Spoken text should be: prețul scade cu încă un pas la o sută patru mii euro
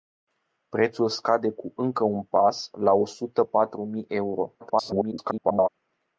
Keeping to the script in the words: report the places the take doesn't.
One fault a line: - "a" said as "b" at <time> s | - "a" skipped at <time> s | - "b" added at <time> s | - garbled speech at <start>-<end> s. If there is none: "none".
- garbled speech at 4.6-5.7 s